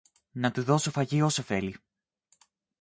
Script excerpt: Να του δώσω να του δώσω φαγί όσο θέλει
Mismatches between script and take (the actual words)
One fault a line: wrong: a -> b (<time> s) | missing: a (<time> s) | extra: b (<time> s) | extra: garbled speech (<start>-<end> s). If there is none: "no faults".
missing: να του δώσω (0.9 s)